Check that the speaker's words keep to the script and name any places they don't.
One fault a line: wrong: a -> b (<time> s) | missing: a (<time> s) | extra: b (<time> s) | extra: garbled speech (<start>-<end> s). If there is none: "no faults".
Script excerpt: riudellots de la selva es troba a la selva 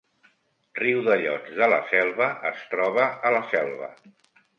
no faults